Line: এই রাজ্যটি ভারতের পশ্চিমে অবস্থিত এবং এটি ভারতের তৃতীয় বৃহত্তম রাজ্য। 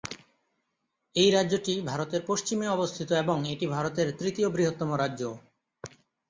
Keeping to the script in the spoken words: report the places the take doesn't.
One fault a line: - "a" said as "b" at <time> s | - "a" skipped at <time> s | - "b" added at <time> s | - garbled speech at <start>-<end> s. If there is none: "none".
none